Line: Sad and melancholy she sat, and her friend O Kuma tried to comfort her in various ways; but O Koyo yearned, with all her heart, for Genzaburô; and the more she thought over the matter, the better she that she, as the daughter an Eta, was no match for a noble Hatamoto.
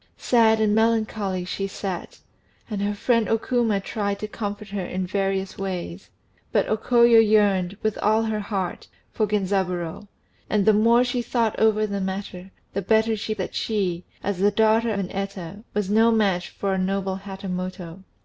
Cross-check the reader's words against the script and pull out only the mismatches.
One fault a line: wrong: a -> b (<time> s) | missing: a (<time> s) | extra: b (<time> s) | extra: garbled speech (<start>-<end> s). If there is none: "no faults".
no faults